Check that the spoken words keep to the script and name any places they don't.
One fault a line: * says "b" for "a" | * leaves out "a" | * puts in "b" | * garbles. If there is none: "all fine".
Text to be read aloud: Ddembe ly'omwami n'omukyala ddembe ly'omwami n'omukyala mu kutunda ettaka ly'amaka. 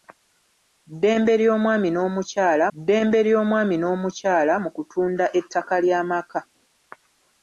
all fine